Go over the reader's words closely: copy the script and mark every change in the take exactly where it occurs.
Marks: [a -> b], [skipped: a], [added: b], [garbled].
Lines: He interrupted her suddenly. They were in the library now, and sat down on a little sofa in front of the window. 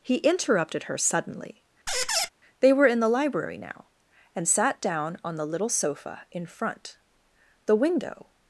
He interrupted her suddenly. They were in the library now, and sat down on [a -> the] little sofa in front [skipped: of] the window.